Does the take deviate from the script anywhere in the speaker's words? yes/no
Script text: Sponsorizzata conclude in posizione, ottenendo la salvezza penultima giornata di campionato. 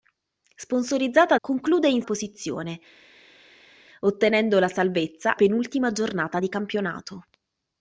no